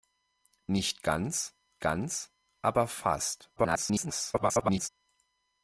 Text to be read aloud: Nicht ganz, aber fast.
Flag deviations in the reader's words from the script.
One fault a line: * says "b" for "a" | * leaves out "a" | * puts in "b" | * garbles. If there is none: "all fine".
* puts in "ganz"
* garbles